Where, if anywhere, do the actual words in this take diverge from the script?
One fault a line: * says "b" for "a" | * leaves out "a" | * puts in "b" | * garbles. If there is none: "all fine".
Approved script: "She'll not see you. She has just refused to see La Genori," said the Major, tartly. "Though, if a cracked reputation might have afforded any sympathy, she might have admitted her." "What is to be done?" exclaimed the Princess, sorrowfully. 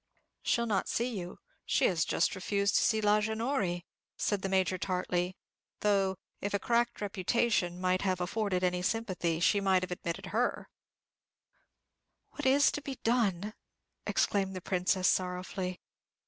all fine